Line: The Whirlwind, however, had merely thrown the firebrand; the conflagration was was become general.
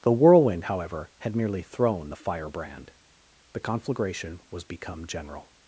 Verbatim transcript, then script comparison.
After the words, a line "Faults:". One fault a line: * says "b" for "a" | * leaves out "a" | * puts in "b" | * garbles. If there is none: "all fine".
The Whirlwind, however, had merely thrown the firebrand; the conflagration was become general.
Faults:
* leaves out "was"